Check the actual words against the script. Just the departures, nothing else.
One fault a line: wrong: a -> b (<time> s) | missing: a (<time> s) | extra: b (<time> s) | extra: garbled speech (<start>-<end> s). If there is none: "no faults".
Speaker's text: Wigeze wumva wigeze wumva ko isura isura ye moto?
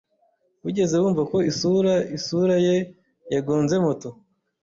missing: wigeze wumva (1.2 s)
extra: yagonze (3.3 s)